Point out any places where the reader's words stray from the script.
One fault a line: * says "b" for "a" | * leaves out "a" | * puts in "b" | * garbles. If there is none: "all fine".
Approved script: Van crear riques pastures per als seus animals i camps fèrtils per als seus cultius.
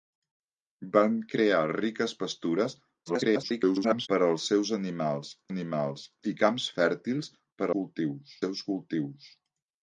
* garbles
* puts in "animals"
* says "cultius" for "als"